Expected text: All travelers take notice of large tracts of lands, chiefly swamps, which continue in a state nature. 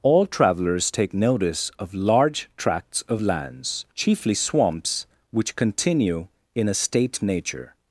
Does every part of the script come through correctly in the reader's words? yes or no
yes